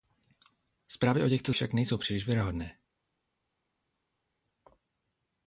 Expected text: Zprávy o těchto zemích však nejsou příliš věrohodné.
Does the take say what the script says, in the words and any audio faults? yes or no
no